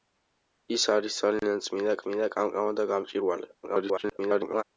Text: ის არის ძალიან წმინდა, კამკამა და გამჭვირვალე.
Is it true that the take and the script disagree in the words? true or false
true